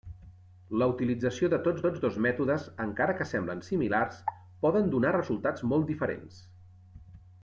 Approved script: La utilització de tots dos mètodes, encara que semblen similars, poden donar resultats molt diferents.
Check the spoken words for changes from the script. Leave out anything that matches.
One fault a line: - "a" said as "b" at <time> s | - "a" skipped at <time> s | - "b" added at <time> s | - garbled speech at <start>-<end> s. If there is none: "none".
- "tots" added at 1.9 s